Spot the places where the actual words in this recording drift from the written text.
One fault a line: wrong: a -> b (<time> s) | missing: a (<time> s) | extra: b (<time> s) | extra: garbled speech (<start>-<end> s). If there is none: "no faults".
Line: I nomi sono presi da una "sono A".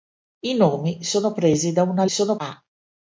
no faults